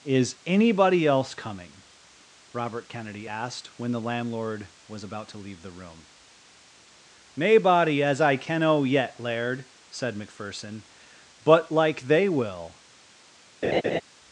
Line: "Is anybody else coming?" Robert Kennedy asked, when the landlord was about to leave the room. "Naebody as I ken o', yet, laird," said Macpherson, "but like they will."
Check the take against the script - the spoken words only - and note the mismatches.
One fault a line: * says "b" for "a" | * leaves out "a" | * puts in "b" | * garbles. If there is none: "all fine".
all fine